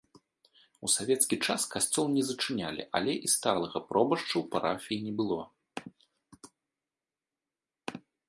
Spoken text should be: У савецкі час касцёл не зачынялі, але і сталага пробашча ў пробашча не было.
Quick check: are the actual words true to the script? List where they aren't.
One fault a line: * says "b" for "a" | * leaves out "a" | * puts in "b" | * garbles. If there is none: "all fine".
* says "парафіі" for "пробашча"